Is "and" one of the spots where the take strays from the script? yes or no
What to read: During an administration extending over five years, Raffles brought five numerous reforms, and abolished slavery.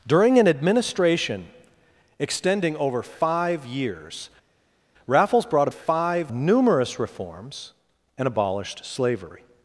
no